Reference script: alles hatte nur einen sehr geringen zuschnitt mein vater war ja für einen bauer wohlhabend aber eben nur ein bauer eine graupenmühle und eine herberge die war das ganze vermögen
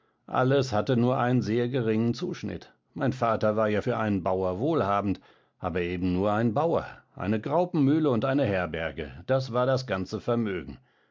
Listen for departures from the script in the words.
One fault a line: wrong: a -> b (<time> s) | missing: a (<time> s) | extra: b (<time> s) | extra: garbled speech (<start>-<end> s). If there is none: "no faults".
wrong: die -> das (9.3 s)